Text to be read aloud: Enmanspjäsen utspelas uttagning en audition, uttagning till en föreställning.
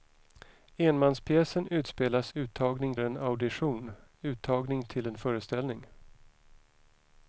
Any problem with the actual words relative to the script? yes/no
no